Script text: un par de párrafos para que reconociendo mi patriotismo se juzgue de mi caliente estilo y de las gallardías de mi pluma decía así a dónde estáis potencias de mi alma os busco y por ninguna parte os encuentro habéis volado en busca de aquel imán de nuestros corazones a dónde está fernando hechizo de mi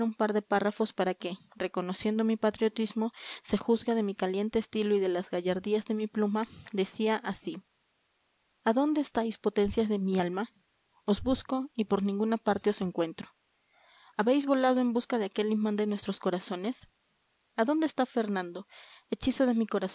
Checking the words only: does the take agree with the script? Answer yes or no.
yes